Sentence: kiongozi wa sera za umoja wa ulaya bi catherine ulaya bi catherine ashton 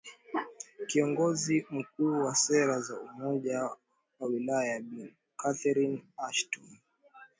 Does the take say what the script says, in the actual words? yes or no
no